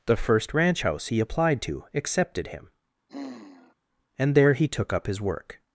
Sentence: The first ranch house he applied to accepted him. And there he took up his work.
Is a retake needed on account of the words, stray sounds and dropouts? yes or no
yes